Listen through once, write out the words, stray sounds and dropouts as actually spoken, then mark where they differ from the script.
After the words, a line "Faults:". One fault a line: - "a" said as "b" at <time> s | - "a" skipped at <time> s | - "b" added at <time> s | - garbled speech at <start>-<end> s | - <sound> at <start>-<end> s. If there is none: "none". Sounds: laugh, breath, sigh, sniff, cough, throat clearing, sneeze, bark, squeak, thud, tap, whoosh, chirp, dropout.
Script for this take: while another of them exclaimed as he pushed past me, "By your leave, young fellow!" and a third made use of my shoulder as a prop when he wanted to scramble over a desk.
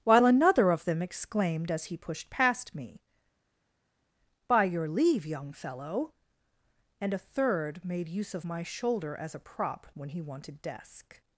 while another of them exclaimed as he pushed past me, "By your leave, young fellow!" and a third made use of my shoulder as a prop when he wanted desk.
Faults:
- "to scramble over a" skipped at 10.6 s